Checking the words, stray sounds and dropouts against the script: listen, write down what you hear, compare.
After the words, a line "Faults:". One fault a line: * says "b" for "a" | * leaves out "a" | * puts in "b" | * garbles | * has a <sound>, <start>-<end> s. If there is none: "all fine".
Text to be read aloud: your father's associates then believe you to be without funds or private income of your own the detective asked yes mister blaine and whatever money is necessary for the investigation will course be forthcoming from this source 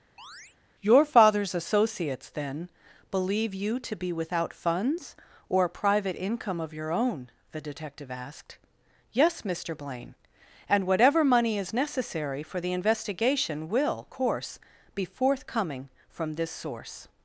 your father's associates then believe you to be without funds or private income of your own the detective asked yes mister blaine and whatever money is necessary for the investigation will course be forthcoming from this source
Faults:
* has a chirp, 0.2-0.6 s